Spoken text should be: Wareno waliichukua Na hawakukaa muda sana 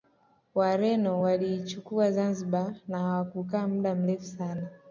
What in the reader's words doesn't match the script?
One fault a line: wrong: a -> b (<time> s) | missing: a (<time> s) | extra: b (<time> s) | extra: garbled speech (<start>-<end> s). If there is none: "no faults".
extra: Zanzibar (2.1 s)
extra: mrefu (3.9 s)